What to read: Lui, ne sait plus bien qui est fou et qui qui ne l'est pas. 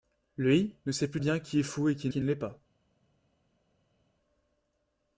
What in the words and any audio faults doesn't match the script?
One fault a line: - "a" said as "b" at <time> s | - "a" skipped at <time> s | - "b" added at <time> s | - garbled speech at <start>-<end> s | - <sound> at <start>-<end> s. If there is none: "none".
none